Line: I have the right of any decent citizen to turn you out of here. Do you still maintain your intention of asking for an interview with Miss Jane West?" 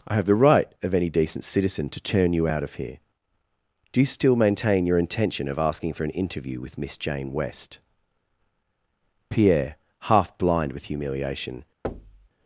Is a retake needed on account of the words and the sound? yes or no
yes